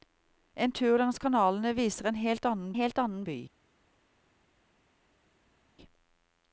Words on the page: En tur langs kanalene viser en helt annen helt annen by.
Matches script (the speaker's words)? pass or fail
pass